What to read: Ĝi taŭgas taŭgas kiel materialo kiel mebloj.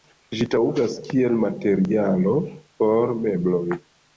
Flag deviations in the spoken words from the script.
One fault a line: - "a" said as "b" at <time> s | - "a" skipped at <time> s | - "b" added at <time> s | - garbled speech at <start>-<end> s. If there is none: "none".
- "taŭgas" skipped at 0.9 s
- "kiel" said as "por" at 2.8 s